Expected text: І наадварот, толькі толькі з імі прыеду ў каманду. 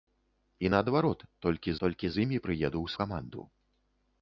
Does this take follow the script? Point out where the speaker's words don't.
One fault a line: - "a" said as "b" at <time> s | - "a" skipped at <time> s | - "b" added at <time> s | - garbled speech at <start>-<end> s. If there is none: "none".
none